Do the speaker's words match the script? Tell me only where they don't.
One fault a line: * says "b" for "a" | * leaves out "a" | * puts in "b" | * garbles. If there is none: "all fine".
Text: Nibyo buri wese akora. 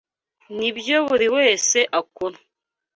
all fine